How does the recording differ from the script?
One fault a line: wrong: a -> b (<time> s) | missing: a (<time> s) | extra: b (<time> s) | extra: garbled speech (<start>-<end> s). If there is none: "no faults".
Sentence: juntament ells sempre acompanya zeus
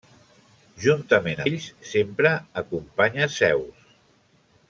no faults